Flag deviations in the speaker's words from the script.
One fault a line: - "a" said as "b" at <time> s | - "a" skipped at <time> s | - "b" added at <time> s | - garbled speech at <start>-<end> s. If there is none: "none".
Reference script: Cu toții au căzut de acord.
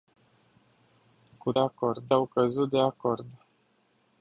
- "toții" said as "acord" at 1.6 s